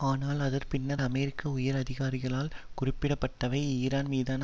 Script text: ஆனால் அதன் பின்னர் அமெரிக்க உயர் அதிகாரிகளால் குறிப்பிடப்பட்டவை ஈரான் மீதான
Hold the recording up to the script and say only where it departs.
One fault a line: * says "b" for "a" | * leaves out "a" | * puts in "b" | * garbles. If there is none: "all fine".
all fine